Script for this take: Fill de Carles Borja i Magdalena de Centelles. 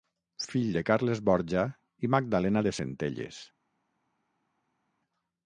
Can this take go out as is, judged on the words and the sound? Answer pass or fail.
pass